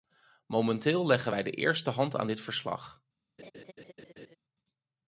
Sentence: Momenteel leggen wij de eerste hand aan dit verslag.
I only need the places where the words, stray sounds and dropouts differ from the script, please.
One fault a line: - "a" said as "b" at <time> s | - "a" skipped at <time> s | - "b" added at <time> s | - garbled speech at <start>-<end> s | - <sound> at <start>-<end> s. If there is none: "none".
- laugh at 3.4-4.4 s